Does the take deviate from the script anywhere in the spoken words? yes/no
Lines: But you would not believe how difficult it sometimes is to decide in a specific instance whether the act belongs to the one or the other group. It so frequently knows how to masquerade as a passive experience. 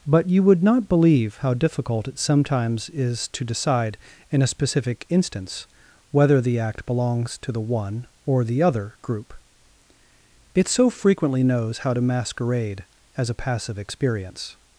no